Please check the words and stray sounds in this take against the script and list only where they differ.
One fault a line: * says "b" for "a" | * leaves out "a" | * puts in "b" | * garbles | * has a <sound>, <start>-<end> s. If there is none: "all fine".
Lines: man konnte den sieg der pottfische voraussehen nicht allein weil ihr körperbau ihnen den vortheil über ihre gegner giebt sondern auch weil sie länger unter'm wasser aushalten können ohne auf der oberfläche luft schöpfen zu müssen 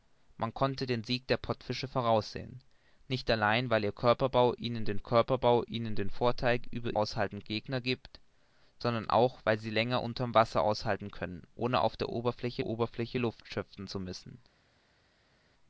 * puts in "körperbau ihnen den"
* says "aushalten" for "ihre"
* puts in "oberfläche"